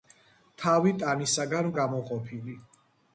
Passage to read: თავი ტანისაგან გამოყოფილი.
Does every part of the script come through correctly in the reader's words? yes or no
yes